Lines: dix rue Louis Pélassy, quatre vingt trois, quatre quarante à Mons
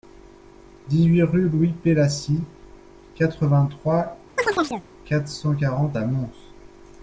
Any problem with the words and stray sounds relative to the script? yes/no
yes